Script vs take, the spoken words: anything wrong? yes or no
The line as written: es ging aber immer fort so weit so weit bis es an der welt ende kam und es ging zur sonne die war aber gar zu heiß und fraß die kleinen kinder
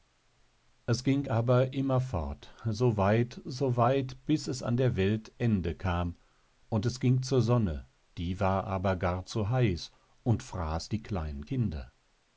no